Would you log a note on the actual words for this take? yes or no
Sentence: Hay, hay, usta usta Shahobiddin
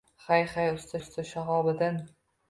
no